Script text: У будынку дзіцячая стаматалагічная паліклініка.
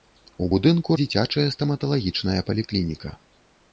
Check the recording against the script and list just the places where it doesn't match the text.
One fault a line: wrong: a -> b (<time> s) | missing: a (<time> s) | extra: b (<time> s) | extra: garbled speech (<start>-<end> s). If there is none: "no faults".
no faults